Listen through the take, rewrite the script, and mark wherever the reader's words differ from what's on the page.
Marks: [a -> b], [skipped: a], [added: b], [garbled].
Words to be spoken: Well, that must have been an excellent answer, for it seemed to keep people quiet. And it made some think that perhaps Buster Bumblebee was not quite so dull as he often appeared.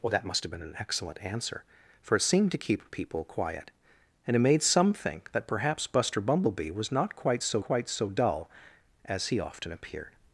Well, that must have been an excellent answer, for it seemed to keep people quiet. And it made some think that perhaps Buster Bumblebee was not quite so [added: quite so] dull as he often appeared.